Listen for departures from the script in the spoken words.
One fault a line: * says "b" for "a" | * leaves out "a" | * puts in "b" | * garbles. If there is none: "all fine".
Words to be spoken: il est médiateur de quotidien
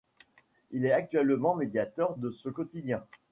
* puts in "actuellement"
* puts in "ce"